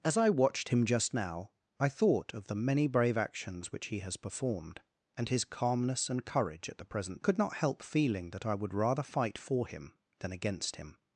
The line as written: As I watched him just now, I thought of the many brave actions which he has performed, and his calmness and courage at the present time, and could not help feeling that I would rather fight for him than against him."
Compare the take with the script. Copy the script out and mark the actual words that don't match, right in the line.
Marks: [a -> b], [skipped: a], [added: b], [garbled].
As I watched him just now, I thought of the many brave actions which he has performed, and his calmness and courage at the present [skipped: time, and] could not help feeling that I would rather fight for him than against him."